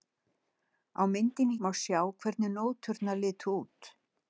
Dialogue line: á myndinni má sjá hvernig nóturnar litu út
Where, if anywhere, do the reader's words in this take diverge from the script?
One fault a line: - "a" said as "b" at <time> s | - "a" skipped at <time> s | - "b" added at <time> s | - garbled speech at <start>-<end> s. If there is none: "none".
none